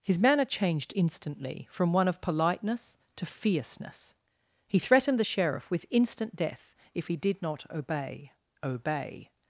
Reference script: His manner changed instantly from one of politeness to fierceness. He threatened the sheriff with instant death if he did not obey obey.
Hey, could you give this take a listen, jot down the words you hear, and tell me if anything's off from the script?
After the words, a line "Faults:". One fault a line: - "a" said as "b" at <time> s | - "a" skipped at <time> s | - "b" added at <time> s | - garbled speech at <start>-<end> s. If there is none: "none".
His manner changed instantly from one of politeness to fierceness. He threatened the sheriff with instant death if he did not obey obey.
Faults:
none